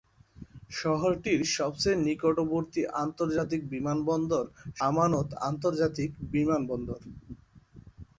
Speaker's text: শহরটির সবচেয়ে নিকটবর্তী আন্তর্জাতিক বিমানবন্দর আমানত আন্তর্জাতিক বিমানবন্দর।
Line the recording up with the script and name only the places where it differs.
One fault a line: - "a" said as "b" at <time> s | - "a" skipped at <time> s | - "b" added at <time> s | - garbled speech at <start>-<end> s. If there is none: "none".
none